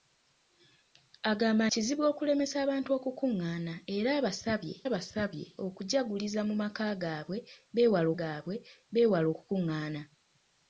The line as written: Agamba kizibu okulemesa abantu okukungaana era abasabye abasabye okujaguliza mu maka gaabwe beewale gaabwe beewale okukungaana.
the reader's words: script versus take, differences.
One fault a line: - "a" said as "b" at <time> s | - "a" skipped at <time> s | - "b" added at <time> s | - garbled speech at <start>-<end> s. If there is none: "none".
none